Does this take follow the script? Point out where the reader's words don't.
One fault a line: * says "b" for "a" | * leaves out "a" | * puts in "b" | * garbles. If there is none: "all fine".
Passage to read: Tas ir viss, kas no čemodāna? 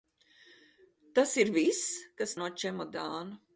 all fine